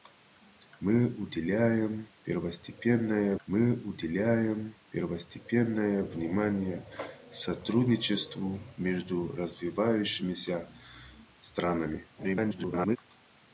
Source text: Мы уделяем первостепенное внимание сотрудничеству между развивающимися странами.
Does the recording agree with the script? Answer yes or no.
no